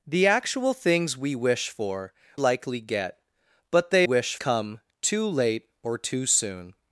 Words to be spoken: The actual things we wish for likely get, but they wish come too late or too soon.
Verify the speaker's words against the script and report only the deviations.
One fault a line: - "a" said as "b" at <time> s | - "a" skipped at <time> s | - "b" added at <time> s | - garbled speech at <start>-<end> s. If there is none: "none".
none